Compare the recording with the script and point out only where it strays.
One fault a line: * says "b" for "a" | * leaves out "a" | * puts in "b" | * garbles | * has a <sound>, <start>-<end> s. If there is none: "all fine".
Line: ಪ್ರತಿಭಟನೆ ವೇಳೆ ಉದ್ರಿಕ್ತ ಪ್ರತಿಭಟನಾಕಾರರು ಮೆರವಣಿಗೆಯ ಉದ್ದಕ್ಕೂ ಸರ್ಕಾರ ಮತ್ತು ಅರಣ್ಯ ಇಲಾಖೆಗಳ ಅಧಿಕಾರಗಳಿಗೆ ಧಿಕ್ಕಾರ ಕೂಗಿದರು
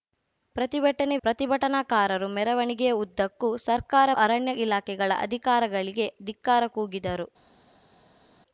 * leaves out "ವೇಳೆ ಉದ್ರಿಕ್ತ"
* leaves out "ಮತ್ತು"